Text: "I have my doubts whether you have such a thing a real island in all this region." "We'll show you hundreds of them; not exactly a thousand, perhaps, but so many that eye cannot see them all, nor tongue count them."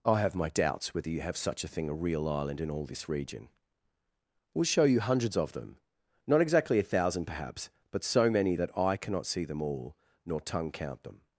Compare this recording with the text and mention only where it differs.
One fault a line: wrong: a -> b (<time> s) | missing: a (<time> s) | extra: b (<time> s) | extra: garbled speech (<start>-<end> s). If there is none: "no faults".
no faults